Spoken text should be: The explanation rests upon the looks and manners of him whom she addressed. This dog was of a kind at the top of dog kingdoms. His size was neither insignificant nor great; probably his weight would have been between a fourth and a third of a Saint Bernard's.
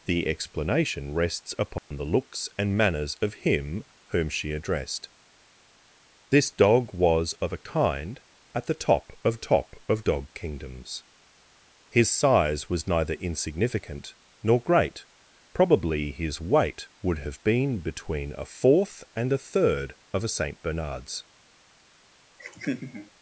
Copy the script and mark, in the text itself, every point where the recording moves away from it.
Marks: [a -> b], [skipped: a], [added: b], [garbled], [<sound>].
The explanation rests upon [dropout] the looks and manners of him whom she addressed. This dog was of a kind at the top of [added: top of] dog kingdoms. His size was neither insignificant nor great; probably his weight would have been between a fourth and a third of a Saint Bernard's. [laugh]